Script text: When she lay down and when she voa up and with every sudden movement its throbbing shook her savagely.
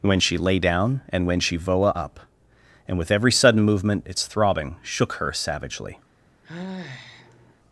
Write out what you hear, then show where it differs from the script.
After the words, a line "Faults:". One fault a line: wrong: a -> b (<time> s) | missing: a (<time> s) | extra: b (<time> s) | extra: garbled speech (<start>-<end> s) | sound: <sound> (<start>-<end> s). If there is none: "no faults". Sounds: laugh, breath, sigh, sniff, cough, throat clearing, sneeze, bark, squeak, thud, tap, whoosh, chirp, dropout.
When she lay down and when she voa up and with every sudden movement its throbbing shook her savagely.
Faults:
sound: sigh (6.4-7.6 s)